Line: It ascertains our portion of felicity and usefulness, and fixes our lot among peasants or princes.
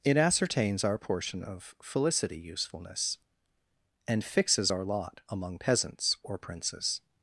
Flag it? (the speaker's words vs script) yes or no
yes